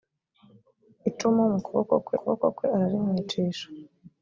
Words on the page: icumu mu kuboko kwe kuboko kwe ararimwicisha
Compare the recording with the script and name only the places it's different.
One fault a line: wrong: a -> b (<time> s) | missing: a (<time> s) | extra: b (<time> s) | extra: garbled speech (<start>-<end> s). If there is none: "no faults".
no faults